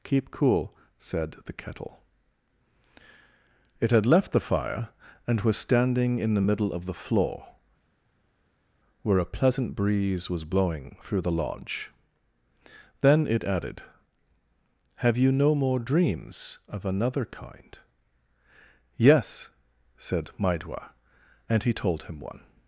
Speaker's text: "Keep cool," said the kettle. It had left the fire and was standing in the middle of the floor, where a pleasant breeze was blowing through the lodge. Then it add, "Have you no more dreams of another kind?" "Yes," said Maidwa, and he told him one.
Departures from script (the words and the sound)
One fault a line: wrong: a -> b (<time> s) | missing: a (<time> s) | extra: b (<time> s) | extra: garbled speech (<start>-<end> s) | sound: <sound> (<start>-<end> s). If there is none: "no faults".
wrong: add -> added (13.4 s)